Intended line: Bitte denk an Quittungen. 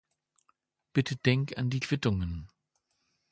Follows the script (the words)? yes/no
no